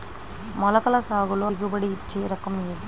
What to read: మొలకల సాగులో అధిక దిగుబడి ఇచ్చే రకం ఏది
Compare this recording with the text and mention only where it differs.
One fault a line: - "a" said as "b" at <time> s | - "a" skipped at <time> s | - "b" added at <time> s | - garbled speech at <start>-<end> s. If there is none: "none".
- "అధిక" skipped at 1.5 s